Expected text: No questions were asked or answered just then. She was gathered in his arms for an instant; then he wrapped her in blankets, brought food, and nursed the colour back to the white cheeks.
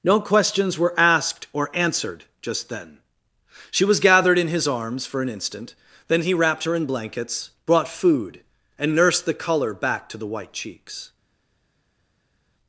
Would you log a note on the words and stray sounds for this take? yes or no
no